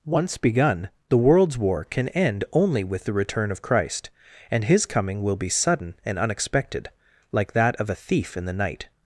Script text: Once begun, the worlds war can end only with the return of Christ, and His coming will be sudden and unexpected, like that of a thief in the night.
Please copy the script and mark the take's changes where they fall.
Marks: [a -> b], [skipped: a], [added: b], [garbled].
Once begun, the worlds war can end only with the return of Christ, and His coming will be sudden and unexpected, like that of a thief in the night.